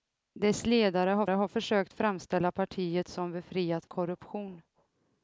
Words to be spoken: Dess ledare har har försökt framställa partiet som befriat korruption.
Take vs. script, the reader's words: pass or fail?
pass